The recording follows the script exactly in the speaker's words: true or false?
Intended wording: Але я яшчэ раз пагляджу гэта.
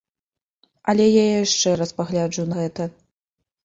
true